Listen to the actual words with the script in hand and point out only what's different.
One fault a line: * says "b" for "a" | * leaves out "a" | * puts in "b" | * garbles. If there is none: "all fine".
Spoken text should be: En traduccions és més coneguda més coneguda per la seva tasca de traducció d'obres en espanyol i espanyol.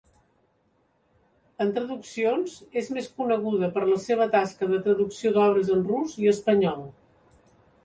* leaves out "més coneguda"
* says "rus" for "espanyol"